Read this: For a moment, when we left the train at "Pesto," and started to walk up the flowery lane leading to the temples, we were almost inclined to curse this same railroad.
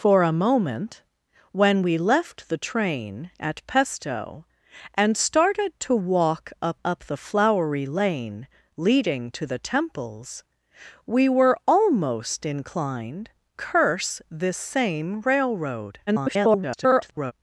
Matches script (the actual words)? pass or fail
fail